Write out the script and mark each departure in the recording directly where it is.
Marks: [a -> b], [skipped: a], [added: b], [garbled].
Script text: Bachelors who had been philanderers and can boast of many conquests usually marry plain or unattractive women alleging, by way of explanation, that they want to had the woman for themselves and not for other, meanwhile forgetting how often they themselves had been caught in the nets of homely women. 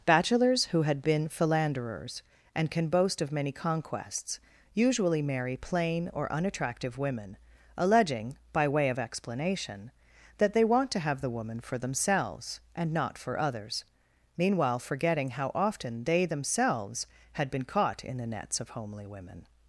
Bachelors who had been philanderers and can boast of many conquests usually marry plain or unattractive women alleging, by way of explanation, that they want to [had -> have] the woman for themselves and not for [other, -> others] meanwhile forgetting how often they themselves had been caught in the nets of homely women.